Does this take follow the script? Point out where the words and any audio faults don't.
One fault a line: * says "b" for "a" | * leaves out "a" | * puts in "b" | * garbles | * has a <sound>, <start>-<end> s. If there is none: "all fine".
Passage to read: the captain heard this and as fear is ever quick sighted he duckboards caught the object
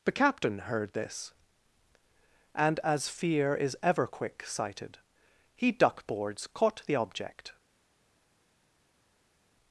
all fine